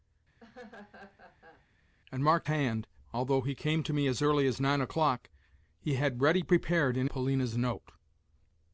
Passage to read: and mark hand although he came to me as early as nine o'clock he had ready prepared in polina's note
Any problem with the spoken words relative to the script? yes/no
no